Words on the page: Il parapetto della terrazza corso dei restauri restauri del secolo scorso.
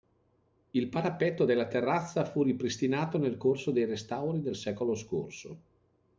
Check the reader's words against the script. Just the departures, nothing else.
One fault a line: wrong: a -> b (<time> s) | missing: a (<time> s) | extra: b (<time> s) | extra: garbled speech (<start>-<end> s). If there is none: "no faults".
extra: fu ripristinato nel (2.2 s)
missing: restauri (4.4 s)